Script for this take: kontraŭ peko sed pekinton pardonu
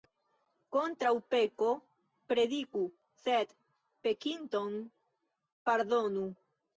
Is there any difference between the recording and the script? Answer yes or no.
yes